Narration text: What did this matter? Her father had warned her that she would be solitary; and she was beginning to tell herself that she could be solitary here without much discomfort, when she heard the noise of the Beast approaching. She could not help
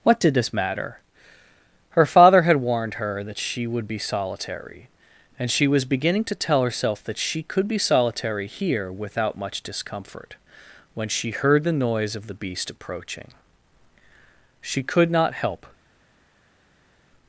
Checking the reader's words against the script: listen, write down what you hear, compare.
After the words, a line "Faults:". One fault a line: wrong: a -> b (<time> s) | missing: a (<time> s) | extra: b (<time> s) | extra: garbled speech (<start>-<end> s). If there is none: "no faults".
What did this matter? Her father had warned her that she would be solitary; and she was beginning to tell herself that she could be solitary here without much discomfort, when she heard the noise of the Beast approaching. She could not help
Faults:
no faults